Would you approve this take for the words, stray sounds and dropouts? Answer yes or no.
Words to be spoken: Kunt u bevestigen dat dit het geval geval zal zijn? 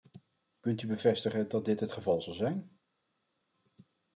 no